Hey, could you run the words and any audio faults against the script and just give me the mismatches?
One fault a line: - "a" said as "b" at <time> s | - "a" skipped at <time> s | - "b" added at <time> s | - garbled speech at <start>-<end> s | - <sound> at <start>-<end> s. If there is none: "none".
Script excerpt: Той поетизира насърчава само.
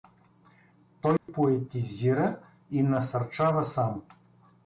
- dropout at 1.2-1.3 s
- "и" added at 2.7 s